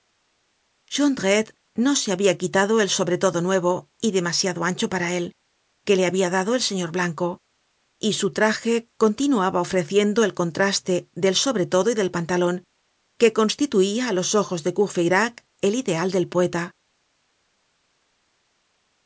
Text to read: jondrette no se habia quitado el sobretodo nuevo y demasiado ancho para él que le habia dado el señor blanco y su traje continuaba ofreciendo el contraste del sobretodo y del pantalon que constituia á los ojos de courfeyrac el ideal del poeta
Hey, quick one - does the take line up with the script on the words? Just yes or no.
yes